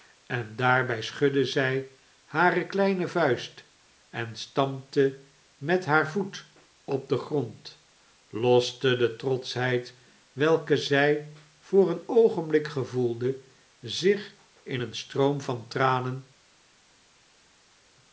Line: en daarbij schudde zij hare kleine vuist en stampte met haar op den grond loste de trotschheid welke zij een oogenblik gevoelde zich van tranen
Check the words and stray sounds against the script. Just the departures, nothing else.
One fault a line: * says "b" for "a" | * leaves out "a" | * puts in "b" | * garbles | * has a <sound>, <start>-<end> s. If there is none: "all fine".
* puts in "voet"
* puts in "voor"
* puts in "in een stroom"